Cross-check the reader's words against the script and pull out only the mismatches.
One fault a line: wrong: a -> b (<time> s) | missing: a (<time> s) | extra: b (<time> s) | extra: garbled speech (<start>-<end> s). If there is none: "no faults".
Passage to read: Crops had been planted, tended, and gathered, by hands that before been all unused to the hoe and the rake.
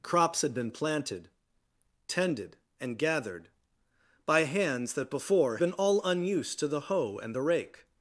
no faults